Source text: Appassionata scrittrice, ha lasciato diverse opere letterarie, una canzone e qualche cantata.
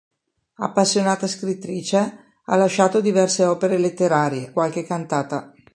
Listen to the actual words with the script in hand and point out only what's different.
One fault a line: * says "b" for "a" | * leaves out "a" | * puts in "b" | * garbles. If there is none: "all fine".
* leaves out "una canzone e"